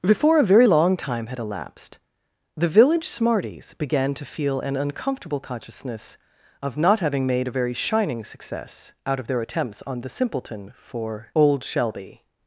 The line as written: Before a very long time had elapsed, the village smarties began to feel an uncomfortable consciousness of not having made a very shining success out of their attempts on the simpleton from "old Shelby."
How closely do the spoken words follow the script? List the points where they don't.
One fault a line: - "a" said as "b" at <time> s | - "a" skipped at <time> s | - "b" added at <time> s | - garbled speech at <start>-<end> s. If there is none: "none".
- "from" said as "for" at 10.8 s